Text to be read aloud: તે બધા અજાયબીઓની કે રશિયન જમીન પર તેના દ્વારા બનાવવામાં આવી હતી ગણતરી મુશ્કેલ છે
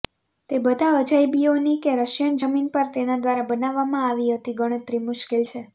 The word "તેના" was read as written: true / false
true